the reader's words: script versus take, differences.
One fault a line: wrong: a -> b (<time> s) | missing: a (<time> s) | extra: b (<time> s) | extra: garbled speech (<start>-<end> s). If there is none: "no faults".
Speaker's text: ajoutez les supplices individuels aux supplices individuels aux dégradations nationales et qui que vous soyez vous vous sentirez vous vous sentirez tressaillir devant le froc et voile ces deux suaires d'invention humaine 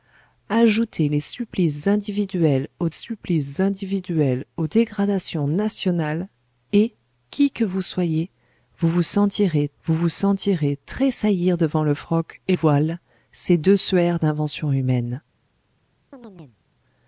no faults